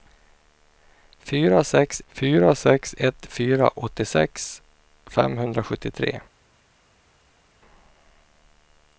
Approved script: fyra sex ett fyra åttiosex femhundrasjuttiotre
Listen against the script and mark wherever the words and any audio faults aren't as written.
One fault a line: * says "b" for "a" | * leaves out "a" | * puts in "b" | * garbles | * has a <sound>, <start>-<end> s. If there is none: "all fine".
* puts in "fyra sex"